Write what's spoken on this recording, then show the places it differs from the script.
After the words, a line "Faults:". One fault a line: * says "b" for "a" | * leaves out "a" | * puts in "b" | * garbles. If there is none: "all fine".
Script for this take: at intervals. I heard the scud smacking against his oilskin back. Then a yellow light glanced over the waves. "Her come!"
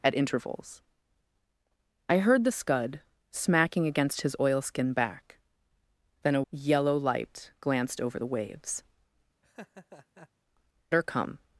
at intervals. I heard the scud smacking against his oilskin back. Then a yellow light glanced over the waves. "Her come!"
Faults:
all fine